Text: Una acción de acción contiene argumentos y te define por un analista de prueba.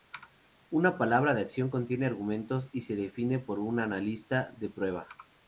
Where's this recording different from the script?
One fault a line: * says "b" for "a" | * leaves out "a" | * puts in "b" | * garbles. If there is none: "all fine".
* says "palabra" for "acción"
* says "se" for "te"